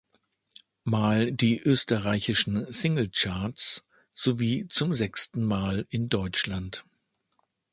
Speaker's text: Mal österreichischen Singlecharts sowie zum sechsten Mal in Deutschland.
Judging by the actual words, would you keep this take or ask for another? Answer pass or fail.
fail